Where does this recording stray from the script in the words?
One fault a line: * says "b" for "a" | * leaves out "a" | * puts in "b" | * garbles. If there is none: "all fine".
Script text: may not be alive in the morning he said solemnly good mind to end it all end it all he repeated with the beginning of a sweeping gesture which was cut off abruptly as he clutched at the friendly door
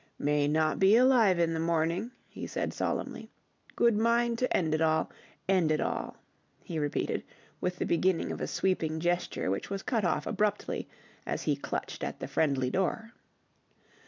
all fine